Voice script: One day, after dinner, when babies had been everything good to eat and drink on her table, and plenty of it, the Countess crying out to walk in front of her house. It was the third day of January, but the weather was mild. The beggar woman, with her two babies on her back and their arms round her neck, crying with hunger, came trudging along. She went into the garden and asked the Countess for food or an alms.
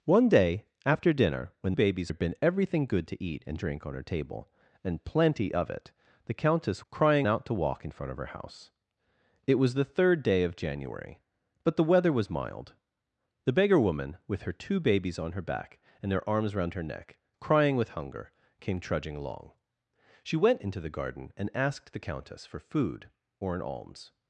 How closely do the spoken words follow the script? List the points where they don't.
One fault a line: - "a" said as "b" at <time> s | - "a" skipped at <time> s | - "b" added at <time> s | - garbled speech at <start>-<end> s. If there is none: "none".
none